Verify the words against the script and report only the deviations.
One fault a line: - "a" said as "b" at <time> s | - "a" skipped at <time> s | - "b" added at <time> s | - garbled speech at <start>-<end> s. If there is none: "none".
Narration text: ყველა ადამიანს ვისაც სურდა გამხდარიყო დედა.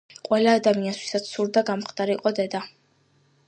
none